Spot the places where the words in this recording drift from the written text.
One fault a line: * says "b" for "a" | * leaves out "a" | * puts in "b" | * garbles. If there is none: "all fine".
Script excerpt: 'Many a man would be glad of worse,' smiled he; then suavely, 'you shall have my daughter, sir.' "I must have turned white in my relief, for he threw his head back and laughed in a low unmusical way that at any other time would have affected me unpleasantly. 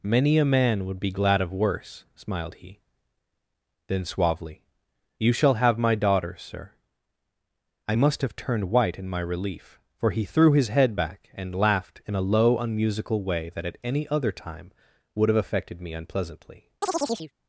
all fine